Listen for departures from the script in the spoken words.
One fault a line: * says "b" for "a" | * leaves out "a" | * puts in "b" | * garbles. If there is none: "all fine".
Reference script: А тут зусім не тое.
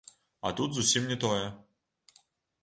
all fine